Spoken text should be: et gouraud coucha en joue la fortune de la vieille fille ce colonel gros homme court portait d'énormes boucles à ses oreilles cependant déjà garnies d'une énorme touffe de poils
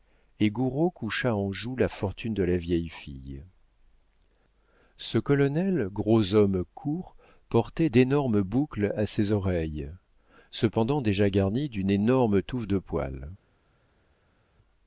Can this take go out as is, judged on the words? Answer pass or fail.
pass